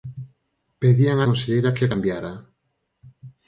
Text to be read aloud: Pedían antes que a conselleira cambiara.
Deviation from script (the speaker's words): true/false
true